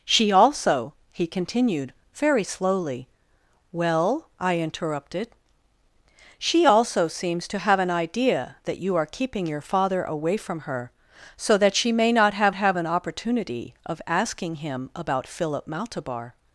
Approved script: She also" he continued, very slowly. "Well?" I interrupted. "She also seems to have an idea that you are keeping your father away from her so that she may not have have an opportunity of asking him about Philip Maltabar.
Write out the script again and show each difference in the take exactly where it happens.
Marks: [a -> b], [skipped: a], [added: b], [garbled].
She also" he continued, very slowly. "Well?" I interrupted. "She also seems to have an idea that you are keeping your father away from her so that she may not have have an opportunity of asking him about Philip Maltabar.